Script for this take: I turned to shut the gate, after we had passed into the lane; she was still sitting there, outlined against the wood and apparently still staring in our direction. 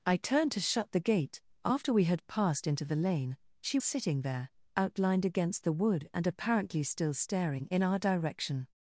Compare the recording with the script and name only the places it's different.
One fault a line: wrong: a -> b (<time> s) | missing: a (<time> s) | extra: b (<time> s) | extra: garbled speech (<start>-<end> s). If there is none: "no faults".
missing: was still (3.8 s)